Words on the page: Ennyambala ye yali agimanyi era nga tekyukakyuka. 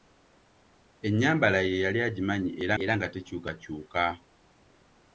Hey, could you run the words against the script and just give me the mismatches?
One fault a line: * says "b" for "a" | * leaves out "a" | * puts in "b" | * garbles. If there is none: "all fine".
* puts in "era"